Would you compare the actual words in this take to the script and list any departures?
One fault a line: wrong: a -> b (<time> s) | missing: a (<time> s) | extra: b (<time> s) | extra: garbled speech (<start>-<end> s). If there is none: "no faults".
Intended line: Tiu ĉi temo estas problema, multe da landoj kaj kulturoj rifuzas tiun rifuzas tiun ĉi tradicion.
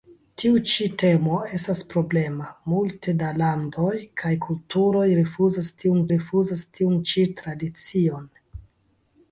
no faults